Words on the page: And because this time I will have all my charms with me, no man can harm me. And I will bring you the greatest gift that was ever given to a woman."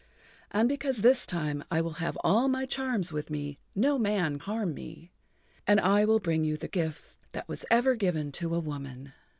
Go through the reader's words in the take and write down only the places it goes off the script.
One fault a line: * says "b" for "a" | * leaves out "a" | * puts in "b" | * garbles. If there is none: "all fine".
* leaves out "can"
* leaves out "greatest"